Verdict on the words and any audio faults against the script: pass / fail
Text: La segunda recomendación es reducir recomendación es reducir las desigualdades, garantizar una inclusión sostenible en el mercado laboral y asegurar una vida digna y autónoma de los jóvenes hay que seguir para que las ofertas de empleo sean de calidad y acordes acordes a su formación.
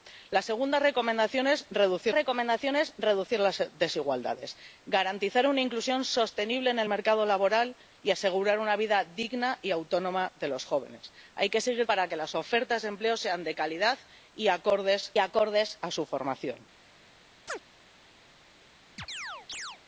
fail